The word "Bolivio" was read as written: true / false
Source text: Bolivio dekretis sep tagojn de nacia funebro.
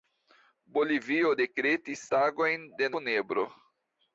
true